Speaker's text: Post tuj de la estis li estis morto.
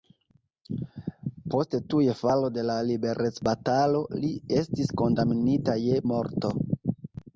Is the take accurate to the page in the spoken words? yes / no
no